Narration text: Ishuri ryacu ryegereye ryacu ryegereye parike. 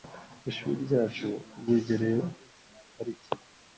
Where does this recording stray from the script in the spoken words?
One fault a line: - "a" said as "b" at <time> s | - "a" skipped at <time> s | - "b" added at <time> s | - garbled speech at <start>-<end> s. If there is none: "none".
- "ryacu ryegereye" skipped at 2.2 s